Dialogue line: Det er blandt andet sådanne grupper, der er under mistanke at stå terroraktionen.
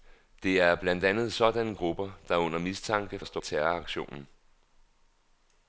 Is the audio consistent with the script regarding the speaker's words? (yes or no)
yes